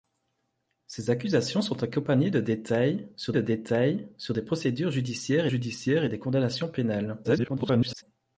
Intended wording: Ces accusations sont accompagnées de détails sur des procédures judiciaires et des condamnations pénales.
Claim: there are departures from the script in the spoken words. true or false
true